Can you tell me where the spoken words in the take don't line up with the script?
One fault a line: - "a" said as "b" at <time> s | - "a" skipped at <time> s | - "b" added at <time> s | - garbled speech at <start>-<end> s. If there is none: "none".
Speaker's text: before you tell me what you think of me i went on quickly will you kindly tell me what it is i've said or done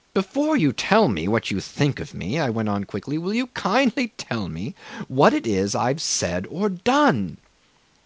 none